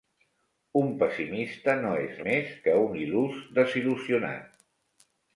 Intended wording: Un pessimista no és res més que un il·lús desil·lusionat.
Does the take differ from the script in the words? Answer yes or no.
yes